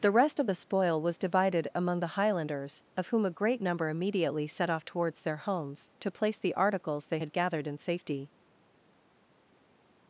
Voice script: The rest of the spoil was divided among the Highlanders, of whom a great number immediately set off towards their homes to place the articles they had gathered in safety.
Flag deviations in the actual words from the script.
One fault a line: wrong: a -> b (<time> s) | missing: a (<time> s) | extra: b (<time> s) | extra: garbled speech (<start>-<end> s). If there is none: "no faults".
no faults